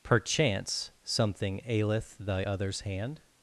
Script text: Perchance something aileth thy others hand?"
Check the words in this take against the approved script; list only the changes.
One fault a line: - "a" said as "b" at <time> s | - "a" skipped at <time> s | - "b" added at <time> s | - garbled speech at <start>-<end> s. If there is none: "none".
none